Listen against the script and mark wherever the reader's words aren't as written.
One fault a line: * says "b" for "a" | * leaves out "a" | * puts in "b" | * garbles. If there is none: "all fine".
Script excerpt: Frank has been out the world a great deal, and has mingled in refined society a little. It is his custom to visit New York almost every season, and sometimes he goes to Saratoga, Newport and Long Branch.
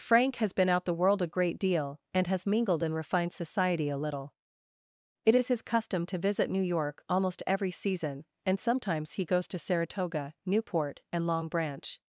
all fine